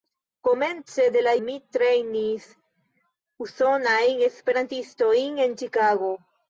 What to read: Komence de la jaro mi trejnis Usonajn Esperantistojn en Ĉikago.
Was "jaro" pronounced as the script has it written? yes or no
no